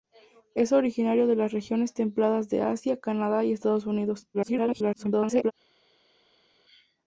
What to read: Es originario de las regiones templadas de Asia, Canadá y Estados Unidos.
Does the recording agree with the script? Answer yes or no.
no